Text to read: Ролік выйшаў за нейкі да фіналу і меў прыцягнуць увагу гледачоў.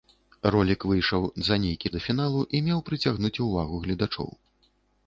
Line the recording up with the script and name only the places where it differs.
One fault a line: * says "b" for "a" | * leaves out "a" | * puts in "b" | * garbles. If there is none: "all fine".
all fine